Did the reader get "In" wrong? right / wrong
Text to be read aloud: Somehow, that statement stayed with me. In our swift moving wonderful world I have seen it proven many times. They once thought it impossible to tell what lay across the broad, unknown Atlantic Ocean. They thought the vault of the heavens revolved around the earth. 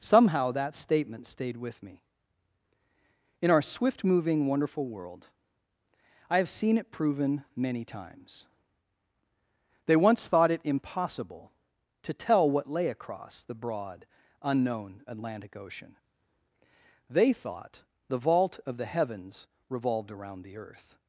right